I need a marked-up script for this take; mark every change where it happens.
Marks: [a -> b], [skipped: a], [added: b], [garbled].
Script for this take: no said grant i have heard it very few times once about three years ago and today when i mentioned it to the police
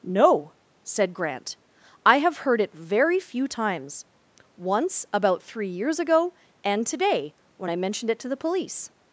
no said grant i have heard it very few times once about three years ago and today when i mentioned it to the police